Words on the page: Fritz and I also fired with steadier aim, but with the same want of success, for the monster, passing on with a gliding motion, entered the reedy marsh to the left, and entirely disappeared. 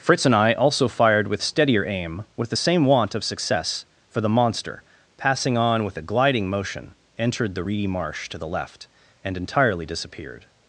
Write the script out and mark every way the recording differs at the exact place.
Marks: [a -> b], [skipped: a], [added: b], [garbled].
Fritz and I also fired with steadier aim, [skipped: but] with the same want of success, for the monster, passing on with a gliding motion, entered the reedy marsh to the left, and entirely disappeared.